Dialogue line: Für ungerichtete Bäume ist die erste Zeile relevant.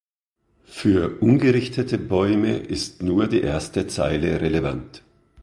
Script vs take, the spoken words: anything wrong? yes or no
yes